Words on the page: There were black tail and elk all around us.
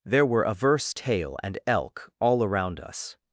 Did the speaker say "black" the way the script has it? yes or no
no